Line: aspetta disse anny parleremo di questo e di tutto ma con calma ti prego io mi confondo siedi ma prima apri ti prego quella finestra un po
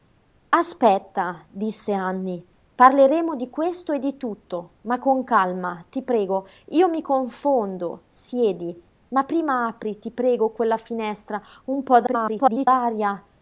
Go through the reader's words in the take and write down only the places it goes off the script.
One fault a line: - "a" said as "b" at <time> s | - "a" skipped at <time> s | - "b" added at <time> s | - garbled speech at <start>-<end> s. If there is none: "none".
- garbled speech at 12.1-12.7 s